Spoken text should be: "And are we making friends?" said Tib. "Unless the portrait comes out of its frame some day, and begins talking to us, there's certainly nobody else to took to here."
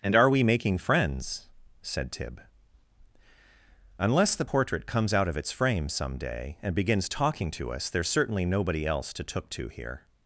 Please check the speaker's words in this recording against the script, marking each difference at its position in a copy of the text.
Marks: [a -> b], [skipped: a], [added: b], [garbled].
"And are we making friends?" said Tib. "Unless the portrait comes out of its frame some day, and begins talking to us, there's certainly nobody else to took to here."